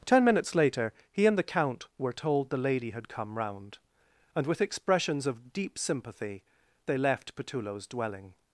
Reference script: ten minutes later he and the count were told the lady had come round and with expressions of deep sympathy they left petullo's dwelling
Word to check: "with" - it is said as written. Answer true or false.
true